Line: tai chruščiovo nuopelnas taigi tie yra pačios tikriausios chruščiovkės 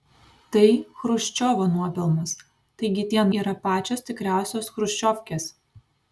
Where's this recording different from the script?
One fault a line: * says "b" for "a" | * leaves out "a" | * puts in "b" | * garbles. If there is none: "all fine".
all fine